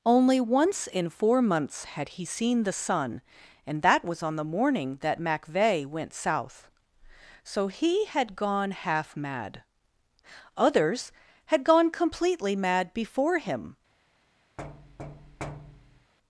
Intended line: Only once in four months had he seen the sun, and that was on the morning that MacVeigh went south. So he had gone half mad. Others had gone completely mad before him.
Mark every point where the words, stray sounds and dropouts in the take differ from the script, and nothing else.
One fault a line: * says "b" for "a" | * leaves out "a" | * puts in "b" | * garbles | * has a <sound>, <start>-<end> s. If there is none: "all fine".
* has a thud, 14.6-16.1 s